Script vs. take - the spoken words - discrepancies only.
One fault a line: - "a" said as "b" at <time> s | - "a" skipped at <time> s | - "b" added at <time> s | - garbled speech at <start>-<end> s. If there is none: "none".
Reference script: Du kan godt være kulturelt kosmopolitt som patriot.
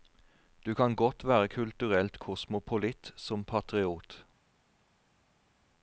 none